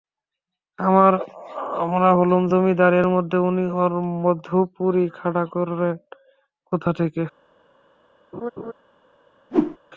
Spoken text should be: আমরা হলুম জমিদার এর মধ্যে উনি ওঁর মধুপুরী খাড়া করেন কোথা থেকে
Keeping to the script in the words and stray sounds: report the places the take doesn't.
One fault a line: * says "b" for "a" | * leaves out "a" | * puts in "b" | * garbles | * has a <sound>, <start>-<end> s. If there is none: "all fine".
* has a laugh, 8.3-8.7 s
* has a whoosh, 9.5-9.8 s